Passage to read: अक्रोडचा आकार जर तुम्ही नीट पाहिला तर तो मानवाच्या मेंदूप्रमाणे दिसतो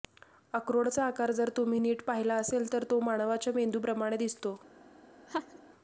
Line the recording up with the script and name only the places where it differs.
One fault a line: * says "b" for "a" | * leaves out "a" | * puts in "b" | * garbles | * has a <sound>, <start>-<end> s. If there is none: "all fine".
* puts in "असेल"
* has a laugh, 5.3-5.6 s